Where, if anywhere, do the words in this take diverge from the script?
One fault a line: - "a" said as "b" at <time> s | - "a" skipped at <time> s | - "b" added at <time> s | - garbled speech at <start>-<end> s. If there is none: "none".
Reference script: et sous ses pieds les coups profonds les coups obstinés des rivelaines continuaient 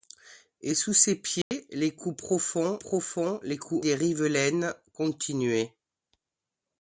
- "profonds" added at 2.8 s
- "obstinés" skipped at 3.8 s